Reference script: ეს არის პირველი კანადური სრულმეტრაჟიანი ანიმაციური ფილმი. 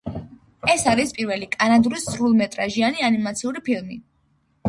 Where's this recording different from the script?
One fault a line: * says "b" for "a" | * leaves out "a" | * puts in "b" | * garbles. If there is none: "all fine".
all fine